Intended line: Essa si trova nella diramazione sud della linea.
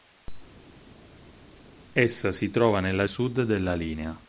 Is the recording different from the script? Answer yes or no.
yes